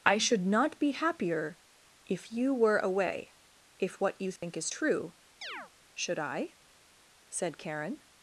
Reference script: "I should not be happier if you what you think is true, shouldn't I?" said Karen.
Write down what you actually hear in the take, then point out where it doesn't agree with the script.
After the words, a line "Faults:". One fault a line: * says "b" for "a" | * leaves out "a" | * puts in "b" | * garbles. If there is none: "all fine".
"I should not be happier if you were away if what you think is true, should I?" said Karen.
Faults:
* puts in "were away if"
* says "should" for "shouldn't"